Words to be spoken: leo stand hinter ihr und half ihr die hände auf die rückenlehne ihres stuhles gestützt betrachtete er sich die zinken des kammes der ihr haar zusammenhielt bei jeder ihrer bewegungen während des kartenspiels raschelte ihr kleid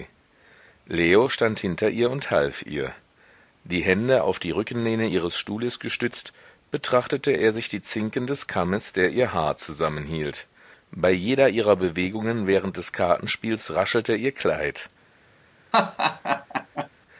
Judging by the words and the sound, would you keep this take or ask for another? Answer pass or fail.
fail